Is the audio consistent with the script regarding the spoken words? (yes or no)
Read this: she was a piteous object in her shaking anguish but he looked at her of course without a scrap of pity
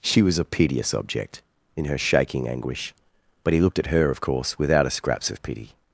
no